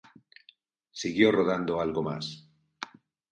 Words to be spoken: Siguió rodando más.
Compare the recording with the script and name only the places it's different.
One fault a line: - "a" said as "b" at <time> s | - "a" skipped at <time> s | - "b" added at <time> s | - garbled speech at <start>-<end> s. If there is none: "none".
- "algo" added at 1.8 s